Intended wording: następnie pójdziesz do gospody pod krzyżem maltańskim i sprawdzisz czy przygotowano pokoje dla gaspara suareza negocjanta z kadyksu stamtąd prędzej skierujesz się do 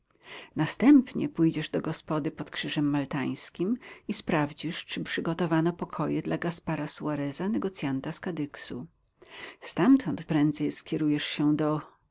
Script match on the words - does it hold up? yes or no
yes